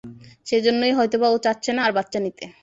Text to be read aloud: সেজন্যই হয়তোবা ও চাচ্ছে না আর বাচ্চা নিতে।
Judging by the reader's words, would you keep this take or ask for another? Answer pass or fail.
pass